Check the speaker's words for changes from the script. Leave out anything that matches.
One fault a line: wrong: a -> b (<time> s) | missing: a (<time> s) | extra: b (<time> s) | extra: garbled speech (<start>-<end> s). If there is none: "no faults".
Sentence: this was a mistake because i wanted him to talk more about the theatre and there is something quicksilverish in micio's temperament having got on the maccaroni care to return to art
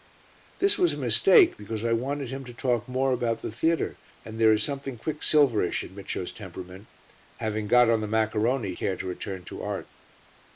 no faults